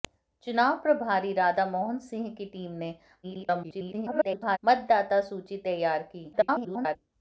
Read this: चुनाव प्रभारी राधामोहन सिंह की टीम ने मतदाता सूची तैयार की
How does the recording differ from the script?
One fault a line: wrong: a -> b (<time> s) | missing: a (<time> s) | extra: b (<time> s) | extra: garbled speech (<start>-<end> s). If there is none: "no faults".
extra: garbled speech (3.2-4.6 s)
extra: garbled speech (6.3-7.0 s)